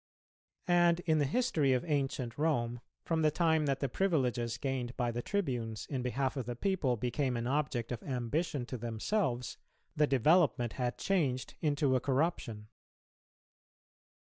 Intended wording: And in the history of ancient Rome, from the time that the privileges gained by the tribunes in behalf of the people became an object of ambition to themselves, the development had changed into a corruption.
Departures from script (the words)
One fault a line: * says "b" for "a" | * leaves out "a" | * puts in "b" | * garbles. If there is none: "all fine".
all fine